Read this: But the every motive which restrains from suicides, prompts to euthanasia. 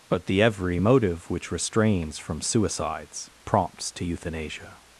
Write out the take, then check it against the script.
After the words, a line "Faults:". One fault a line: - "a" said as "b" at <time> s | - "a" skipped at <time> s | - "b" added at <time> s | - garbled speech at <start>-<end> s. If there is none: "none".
But the every motive which restrains from suicides, prompts to euthanasia.
Faults:
none